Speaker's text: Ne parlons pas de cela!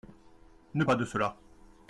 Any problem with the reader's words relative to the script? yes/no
yes